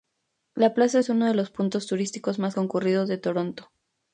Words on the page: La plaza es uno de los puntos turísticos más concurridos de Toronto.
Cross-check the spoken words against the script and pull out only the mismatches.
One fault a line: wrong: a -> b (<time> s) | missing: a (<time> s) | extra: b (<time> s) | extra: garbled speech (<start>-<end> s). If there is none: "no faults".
no faults